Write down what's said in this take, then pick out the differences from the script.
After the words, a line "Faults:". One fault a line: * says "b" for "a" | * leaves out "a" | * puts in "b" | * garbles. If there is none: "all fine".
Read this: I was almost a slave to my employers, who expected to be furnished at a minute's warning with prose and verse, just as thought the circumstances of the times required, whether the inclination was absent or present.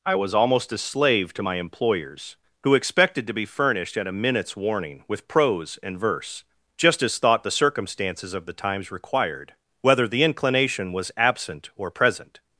I was almost a slave to my employers, who expected to be furnished at a minute's warning with prose and verse, just as thought the circumstances of the times required, whether the inclination was absent or present.
Faults:
all fine